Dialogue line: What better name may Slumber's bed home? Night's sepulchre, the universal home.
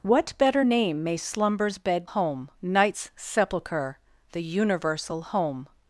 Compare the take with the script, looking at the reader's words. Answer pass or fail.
pass